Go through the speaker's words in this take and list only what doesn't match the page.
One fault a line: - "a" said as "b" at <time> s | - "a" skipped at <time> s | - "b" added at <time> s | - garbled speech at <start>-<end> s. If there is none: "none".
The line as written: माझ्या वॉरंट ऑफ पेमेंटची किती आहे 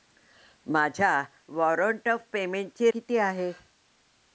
none